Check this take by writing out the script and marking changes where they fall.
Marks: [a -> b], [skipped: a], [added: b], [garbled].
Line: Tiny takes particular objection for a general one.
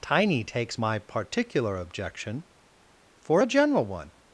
Tiny takes [added: my] particular objection for a general one.